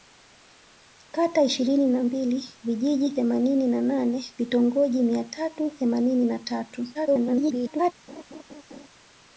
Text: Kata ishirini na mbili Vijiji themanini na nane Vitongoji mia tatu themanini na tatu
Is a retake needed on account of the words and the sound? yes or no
yes